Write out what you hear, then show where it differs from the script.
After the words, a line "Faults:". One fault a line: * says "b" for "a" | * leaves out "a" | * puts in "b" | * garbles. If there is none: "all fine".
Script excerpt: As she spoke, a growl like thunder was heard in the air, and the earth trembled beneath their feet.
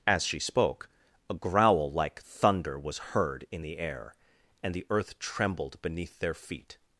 As she spoke, a growl like thunder was heard in the air, and the earth trembled beneath their feet.
Faults:
all fine